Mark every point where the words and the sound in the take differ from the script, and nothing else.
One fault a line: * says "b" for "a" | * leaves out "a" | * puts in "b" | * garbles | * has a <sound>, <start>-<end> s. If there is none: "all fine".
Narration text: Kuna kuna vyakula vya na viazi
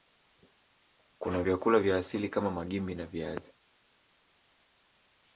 * leaves out "kuna"
* puts in "asili kama Magimbi"